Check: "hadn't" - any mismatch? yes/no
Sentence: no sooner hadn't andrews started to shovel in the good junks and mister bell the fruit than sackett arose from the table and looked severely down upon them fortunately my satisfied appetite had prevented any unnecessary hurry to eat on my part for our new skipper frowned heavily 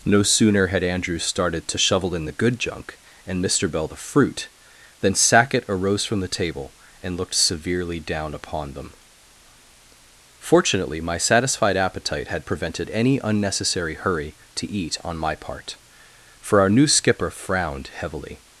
yes